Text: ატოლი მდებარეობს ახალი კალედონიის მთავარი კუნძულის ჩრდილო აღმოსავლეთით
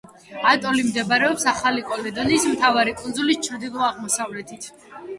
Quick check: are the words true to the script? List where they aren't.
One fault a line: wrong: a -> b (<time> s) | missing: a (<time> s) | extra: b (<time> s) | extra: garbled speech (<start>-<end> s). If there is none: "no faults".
no faults